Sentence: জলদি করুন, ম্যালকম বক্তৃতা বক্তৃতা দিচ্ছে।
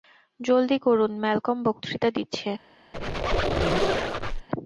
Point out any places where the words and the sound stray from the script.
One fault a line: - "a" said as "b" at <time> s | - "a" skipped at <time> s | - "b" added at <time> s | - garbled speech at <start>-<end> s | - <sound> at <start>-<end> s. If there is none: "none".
- "বক্তৃতা" skipped at 2.1 s
- squeak at 2.9-4.5 s